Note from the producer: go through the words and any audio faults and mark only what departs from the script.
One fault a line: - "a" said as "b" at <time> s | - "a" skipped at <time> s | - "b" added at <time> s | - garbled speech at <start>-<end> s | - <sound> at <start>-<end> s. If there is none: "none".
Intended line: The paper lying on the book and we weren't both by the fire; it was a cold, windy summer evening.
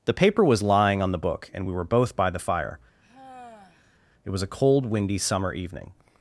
- "was" added at 0.4 s
- "weren't" said as "were" at 1.7 s
- sigh at 3.0-4.0 s